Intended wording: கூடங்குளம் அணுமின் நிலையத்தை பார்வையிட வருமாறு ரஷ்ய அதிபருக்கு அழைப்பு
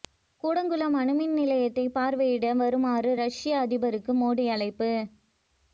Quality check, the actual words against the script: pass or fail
fail